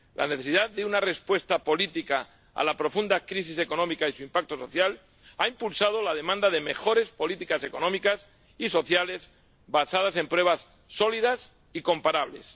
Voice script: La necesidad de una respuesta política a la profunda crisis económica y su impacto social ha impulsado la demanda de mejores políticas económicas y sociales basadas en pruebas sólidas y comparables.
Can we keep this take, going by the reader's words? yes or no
yes